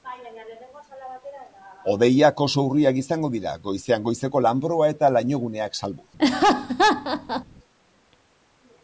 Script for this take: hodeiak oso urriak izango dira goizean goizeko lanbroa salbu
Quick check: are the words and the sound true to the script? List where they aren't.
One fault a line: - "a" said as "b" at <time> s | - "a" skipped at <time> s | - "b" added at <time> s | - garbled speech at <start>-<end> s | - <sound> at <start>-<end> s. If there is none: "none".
- "eta lainoguneak" added at 4.9 s
- laugh at 6.2-7.4 s